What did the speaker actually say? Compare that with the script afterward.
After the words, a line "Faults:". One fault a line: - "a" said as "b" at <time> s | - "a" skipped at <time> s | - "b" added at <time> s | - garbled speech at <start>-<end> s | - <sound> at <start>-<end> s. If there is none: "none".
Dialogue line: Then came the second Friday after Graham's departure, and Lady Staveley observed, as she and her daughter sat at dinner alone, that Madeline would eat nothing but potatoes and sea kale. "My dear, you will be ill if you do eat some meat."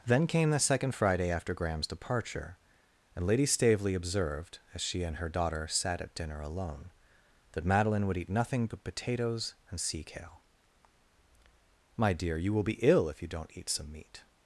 Then came the second Friday after Graham's departure, and Lady Staveley observed, as she and her daughter sat at dinner alone, that Madeline would eat nothing but potatoes and sea kale. "My dear, you will be ill if you don't eat some meat."
Faults:
- "do" said as "don't" at 13.3 s